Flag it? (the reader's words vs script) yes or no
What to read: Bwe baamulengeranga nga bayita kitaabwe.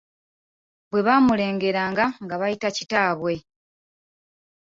no